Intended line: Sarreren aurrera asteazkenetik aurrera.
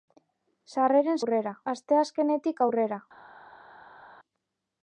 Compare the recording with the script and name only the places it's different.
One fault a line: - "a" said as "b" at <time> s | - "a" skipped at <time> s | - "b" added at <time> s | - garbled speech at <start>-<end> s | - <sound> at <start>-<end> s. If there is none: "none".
none